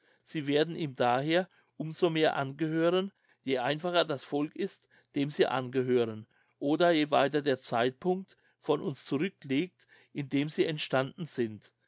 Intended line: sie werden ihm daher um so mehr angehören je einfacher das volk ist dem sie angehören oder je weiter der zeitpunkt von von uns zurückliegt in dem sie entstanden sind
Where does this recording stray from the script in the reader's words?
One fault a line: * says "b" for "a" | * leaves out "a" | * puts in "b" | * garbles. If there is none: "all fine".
* leaves out "von"